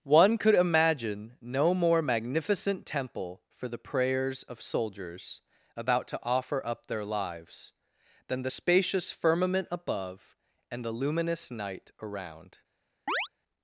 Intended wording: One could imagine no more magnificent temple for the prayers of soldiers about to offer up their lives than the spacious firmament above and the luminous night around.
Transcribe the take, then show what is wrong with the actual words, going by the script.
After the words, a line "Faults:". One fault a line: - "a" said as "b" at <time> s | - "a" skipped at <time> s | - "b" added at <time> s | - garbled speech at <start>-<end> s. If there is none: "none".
One could imagine no more magnificent temple for the prayers of soldiers about to offer up their lives than the spacious firmament above and the luminous night around.
Faults:
none